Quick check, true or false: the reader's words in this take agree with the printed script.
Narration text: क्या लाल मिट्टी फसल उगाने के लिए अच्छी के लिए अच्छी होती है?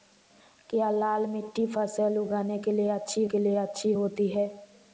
true